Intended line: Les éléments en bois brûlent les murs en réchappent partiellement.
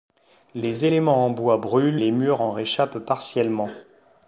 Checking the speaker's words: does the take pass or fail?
pass